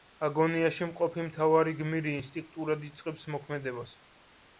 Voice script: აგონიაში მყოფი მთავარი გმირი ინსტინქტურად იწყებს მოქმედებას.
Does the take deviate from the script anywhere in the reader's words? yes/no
no